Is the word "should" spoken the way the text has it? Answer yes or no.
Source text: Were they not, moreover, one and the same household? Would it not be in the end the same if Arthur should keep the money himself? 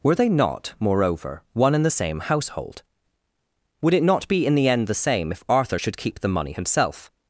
yes